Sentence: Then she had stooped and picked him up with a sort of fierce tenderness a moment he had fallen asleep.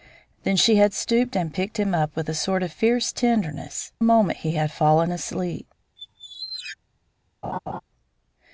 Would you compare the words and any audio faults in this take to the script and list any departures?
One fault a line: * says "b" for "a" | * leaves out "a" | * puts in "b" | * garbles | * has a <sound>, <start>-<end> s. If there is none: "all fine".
* has a squeak, 6.0-6.8 s
* has a laugh, 7.4-7.8 s